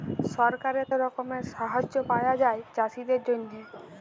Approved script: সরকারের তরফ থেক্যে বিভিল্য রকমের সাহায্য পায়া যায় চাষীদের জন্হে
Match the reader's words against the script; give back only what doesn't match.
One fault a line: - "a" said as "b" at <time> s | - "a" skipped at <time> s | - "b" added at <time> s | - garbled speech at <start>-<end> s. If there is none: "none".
- "তরফ থেক্যে বিভিল্য" skipped at 0.9 s